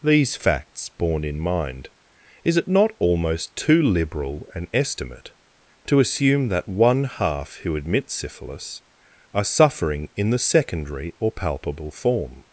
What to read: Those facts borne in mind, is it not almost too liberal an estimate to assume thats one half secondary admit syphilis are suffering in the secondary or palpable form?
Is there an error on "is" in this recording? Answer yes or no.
no